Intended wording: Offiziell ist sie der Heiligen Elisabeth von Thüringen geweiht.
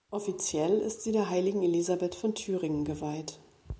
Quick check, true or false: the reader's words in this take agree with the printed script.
true